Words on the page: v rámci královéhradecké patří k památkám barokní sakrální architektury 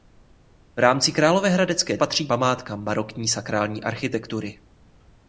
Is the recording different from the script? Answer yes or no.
no